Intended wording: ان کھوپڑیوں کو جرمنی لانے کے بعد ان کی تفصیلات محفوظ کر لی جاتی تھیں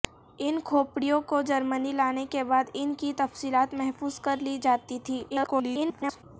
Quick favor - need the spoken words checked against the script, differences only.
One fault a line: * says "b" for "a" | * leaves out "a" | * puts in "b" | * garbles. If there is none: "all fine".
* garbles